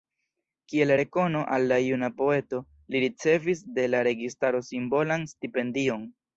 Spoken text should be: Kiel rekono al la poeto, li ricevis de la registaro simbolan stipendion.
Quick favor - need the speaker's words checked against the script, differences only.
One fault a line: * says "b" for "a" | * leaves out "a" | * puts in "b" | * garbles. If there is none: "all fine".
* puts in "juna"